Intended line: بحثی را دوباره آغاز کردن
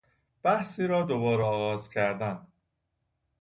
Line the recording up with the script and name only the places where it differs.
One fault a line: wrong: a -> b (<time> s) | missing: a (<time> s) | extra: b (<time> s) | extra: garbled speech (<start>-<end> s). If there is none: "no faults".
no faults